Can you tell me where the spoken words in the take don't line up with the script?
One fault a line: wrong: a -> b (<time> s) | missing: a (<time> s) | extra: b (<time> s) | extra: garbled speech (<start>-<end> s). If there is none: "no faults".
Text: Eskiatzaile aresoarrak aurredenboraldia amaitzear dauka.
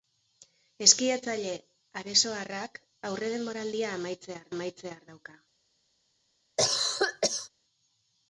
extra: amaitzear (4.5 s)